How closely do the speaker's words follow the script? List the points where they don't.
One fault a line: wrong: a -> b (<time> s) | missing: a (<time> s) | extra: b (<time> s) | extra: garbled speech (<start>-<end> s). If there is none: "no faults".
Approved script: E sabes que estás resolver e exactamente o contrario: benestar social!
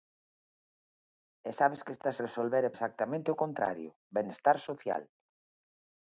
no faults